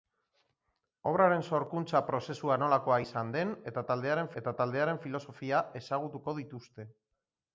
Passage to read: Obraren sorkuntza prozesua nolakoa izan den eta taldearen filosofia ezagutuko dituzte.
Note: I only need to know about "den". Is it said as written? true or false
true